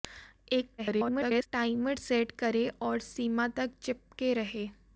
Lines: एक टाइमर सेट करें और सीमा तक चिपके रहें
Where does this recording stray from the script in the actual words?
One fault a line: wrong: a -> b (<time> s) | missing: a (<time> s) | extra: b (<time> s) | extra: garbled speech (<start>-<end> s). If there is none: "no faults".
extra: garbled speech (0.8-1.5 s)